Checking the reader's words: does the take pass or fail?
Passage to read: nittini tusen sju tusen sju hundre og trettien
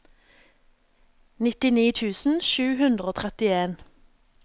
fail